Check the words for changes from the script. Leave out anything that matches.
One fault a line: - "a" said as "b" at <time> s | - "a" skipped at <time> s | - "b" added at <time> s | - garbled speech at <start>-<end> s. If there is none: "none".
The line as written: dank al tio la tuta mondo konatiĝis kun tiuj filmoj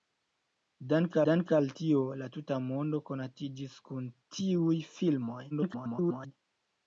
- "dank" added at 1.3 s
- garbled speech at 5.5-6.3 s